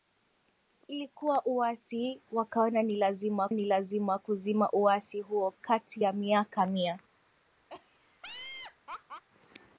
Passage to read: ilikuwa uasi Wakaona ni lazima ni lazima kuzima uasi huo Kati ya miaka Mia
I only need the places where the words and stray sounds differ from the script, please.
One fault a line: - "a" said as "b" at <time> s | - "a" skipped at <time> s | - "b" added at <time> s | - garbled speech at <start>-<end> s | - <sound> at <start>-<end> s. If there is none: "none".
- laugh at 7.7-9.2 s